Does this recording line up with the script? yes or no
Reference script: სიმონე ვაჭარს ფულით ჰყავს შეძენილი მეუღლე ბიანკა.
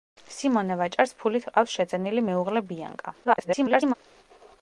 no